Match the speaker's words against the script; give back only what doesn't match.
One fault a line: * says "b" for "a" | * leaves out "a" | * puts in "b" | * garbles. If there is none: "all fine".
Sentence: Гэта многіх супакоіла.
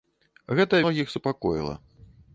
all fine